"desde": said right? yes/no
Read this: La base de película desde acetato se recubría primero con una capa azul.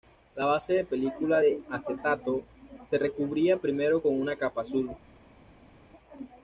no